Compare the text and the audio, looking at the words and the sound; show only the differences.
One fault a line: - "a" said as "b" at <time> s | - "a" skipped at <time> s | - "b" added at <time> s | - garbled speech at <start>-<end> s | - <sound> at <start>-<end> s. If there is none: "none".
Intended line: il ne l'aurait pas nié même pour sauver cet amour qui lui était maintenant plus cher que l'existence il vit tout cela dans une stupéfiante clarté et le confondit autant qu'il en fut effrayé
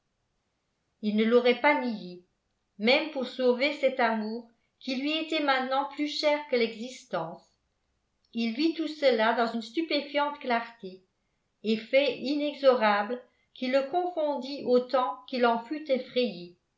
- "fait inexorable qui" added at 11.8 s